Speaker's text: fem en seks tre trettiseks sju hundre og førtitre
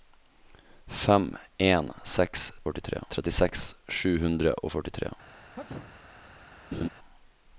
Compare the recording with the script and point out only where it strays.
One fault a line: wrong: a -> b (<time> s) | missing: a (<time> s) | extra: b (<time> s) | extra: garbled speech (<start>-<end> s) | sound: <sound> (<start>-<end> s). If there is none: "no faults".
wrong: tre -> førtitre (2.7 s)
sound: sneeze (5.6-6.0 s)
sound: laugh (6.7-6.9 s)